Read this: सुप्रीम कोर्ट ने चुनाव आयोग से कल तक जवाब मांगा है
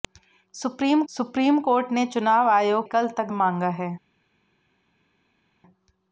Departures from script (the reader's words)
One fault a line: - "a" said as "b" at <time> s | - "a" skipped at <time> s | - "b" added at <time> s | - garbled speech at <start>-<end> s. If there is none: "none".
- "सुप्रीम" added at 1.1 s
- "से" skipped at 2.9 s
- "जवाब" skipped at 3.3 s